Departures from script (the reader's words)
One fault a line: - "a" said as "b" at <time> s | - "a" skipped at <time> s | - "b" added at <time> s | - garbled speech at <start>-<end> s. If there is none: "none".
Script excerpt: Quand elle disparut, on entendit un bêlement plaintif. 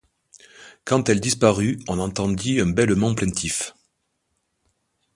none